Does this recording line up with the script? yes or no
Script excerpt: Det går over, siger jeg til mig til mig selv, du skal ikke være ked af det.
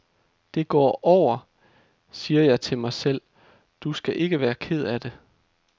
no